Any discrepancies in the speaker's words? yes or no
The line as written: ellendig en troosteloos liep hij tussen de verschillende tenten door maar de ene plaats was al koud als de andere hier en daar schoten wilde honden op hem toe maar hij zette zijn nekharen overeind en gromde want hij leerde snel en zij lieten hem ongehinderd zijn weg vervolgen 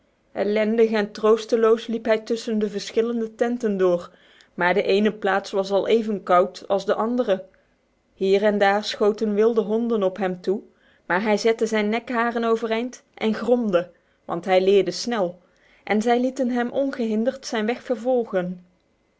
yes